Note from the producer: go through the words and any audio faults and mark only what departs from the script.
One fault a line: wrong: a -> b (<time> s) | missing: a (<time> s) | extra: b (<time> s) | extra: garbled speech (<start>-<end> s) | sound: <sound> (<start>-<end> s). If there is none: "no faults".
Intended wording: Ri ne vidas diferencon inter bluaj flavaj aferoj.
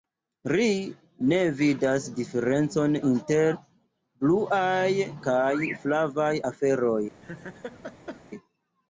extra: kaj (5.3 s)
sound: laugh (7.2-8.2 s)